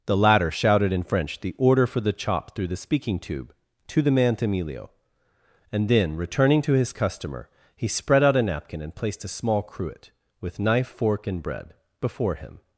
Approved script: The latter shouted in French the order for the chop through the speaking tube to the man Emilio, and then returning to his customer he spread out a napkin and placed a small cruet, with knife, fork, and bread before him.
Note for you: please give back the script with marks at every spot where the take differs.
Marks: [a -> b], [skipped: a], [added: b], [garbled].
The latter shouted in French the order for the chop through the speaking tube to the man Emilio, and then returning to his customer he spread out a napkin and placed a small cruet, with knife, fork, and bread before him.